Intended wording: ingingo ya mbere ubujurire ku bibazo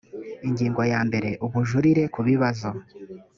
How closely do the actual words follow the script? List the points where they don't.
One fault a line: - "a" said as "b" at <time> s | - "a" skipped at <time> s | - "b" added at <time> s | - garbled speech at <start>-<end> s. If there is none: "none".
none